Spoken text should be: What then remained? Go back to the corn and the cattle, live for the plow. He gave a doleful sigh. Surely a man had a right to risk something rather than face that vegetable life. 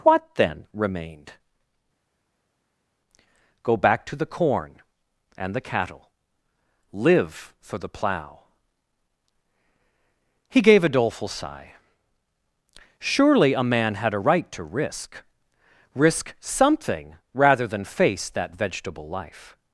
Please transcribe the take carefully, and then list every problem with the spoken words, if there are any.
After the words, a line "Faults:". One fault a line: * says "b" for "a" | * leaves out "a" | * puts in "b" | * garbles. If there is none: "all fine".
What then remained? Go back to the corn and the cattle, live for the plow. He gave a doleful sigh. Surely a man had a right to risk risk something rather than face that vegetable life.
Faults:
* puts in "risk"